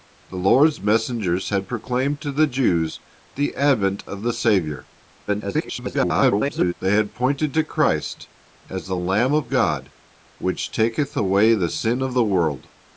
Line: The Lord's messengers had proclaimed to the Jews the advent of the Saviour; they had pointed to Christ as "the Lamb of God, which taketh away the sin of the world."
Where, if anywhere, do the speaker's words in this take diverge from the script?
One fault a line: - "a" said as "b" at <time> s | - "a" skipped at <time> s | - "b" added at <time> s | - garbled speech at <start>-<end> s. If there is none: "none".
- garbled speech at 5.3-6.7 s